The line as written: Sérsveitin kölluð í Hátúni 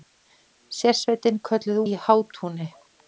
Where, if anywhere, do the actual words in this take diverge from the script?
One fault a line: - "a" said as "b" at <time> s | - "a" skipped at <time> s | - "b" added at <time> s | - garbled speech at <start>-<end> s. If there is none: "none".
none